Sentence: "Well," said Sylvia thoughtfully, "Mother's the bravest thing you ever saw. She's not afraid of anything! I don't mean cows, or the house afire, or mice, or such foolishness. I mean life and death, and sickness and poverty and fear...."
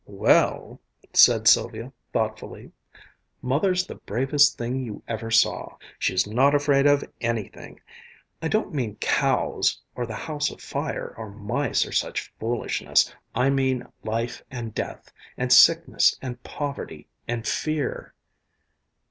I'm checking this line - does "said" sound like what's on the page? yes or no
yes